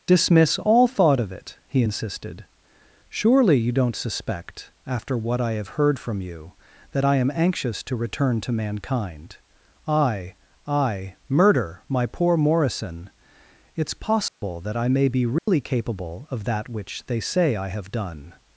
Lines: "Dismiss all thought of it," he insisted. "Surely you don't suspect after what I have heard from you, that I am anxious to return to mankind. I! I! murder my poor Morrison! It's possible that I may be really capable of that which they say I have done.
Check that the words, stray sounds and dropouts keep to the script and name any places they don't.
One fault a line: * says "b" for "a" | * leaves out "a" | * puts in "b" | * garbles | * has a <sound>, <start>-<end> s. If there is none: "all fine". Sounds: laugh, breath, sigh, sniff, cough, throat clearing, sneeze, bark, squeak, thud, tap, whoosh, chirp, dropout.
* has a dropout, 14.3-14.4 s
* has a dropout, 15.4-15.5 s